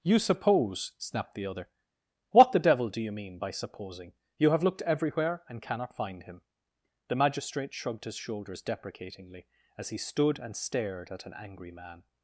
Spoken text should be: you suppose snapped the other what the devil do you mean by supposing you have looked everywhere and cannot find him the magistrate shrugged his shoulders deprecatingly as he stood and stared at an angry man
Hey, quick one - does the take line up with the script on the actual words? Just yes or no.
yes